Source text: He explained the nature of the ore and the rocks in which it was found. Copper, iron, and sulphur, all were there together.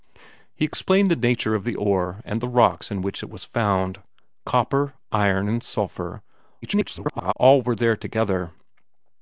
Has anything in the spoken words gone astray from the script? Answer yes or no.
yes